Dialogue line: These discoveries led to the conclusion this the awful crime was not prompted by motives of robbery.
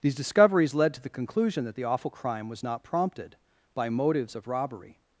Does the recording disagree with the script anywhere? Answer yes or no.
yes